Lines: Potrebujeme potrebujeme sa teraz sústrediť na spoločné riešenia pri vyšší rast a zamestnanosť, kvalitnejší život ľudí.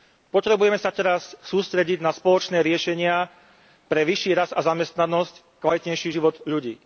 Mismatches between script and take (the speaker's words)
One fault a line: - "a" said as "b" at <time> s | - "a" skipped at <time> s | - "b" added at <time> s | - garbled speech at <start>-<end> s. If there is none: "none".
- "potrebujeme" skipped at 0.8 s
- "pri" said as "pre" at 3.9 s